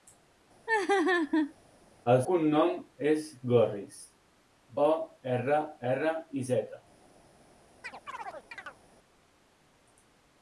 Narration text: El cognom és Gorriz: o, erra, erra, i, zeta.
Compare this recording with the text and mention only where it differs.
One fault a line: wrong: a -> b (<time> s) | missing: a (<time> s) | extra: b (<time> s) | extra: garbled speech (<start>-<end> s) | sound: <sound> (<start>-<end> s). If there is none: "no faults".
sound: laugh (0.7-1.5 s)
sound: chirp (7.8-8.8 s)